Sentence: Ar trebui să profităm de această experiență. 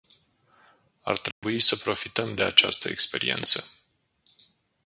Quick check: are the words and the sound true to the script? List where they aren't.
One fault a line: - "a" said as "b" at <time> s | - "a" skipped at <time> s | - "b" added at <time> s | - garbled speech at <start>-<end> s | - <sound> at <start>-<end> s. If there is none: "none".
- dropout at 1.3-1.4 s